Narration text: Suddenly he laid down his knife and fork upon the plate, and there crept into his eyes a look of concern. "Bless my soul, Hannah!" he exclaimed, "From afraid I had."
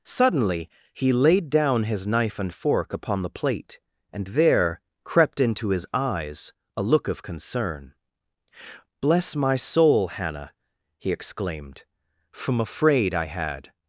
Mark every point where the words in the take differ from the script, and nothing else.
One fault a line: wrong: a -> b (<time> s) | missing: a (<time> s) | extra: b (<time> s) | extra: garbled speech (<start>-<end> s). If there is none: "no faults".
no faults